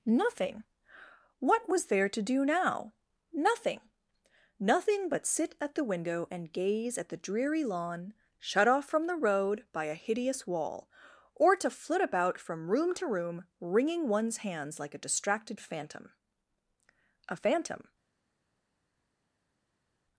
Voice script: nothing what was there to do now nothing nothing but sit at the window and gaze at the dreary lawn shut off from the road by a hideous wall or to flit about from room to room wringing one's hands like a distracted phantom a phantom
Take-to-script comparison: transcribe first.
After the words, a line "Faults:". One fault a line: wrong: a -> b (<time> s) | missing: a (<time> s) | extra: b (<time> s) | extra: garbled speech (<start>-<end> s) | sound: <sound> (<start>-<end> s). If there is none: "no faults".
nothing what was there to do now nothing nothing but sit at the window and gaze at the dreary lawn shut off from the road by a hideous wall or to flit about from room to room wringing one's hands like a distracted phantom a phantom
Faults:
no faults